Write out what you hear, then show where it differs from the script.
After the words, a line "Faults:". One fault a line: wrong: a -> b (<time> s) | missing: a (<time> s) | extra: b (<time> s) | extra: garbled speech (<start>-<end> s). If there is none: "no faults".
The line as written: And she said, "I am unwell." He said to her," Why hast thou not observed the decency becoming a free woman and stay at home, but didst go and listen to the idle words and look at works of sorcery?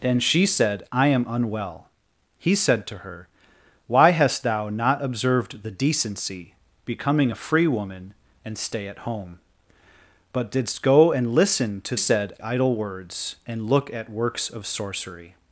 And she said, "I am unwell." He said to her," Why hast thou not observed the decency becoming a free woman and stay at home, but didst go and listen to said idle words and look at works of sorcery?
Faults:
wrong: the -> said (11.9 s)